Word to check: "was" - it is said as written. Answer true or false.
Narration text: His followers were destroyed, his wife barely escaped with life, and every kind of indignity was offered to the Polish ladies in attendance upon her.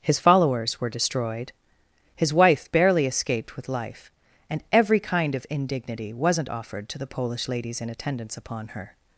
false